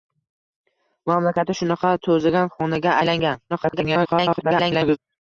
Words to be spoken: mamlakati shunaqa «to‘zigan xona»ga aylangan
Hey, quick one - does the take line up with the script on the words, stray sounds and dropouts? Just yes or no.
no